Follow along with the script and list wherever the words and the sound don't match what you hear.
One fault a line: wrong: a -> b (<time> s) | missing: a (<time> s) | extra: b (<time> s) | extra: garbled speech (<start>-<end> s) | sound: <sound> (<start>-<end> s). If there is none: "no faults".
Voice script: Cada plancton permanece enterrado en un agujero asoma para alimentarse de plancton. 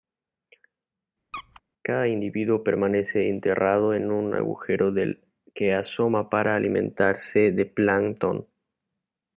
sound: squeak (1.3-1.6 s)
wrong: plancton -> individuo (2.1 s)
extra: del que (4.9 s)